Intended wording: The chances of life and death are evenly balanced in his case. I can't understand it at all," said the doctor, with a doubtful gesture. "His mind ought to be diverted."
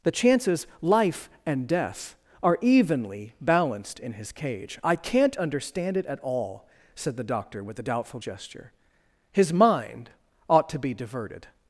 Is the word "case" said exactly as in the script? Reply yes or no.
no